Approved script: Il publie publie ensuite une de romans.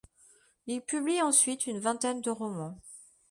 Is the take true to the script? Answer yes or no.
no